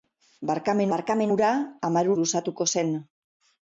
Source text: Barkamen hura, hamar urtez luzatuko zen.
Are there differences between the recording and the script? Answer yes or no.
yes